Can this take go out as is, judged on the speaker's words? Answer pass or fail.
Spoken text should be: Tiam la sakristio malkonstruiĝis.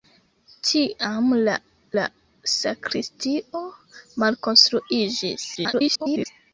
fail